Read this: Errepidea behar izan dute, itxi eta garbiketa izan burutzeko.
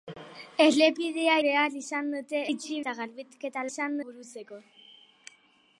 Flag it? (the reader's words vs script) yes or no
no